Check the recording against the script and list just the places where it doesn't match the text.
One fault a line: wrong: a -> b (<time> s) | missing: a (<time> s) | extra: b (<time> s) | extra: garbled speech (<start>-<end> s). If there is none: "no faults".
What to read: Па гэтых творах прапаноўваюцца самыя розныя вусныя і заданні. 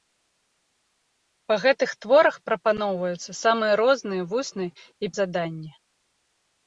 no faults